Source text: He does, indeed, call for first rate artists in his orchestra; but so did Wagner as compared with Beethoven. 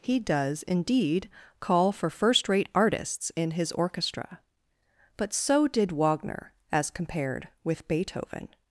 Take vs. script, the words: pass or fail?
pass